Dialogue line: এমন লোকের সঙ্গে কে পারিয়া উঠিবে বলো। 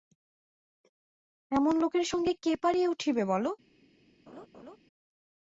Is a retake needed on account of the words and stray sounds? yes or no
yes